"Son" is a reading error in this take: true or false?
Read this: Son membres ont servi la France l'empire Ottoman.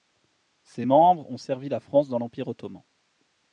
true